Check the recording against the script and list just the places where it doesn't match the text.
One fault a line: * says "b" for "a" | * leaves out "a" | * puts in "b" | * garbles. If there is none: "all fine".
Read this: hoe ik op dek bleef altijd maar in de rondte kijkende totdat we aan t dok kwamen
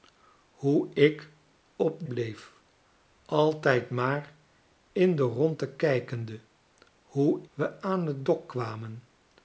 * leaves out "dek"
* says "hoe" for "totdat"